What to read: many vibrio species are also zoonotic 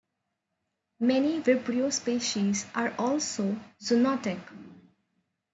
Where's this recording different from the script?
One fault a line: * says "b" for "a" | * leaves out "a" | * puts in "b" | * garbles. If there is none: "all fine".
all fine